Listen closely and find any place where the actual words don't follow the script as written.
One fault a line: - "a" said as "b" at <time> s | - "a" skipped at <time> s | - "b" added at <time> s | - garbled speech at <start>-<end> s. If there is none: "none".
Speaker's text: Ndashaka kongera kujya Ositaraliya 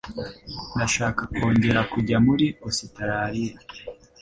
- "muri" added at 2.2 s